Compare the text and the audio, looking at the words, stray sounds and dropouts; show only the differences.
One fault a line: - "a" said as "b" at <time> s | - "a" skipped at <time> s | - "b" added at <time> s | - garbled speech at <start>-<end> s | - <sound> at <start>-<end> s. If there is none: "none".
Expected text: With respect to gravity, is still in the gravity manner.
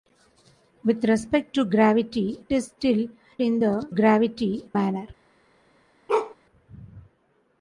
- bark at 6.1-6.4 s